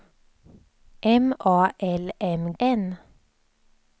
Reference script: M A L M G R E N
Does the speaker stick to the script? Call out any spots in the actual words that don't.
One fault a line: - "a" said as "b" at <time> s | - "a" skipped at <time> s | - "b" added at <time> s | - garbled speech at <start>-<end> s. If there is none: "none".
- "G R E" skipped at 2.5 s